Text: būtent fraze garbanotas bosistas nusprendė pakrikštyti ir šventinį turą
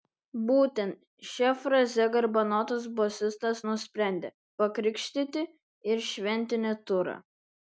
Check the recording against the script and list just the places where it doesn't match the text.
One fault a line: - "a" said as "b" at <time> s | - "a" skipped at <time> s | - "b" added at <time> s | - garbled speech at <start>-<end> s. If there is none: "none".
- "šia" added at 1.3 s